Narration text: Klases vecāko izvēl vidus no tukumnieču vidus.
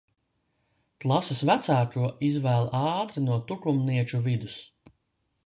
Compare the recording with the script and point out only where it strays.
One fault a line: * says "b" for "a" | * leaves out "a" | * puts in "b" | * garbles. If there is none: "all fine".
* says "ātri" for "vidus"